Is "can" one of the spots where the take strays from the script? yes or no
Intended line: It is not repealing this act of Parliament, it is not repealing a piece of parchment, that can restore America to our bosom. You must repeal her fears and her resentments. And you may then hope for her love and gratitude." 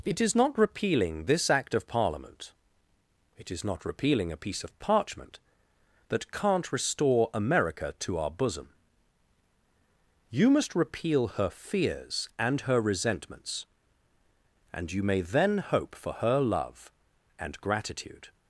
yes